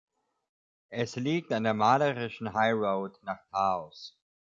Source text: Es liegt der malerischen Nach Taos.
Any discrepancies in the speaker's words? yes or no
yes